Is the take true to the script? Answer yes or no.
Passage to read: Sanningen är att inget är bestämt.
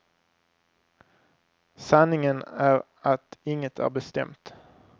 yes